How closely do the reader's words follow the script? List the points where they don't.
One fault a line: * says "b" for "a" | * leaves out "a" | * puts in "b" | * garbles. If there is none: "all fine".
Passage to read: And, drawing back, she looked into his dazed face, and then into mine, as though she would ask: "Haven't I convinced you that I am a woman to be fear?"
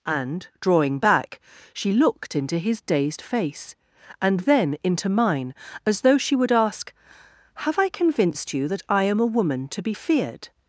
* says "Have" for "Haven't"
* says "feared" for "fear"